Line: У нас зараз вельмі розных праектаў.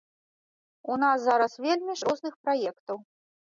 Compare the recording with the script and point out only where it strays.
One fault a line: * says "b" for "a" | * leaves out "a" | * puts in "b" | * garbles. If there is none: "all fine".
all fine